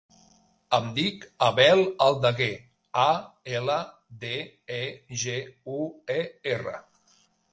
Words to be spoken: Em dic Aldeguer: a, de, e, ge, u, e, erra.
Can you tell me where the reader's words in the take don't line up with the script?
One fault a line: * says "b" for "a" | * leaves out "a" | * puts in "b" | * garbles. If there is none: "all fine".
* puts in "Abel"
* puts in "ela"